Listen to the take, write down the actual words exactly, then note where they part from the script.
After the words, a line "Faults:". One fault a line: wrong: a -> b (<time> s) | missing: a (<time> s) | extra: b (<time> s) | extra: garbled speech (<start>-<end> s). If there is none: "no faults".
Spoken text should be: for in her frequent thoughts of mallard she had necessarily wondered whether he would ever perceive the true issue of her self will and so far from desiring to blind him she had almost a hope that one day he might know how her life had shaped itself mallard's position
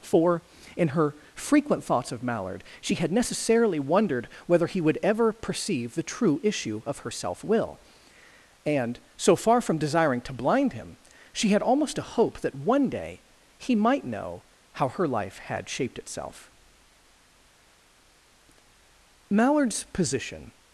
for in her frequent thoughts of mallard she had necessarily wondered whether he would ever perceive the true issue of her self will and so far from desiring to blind him she had almost a hope that one day he might know how her life had shaped itself mallard's position
Faults:
no faults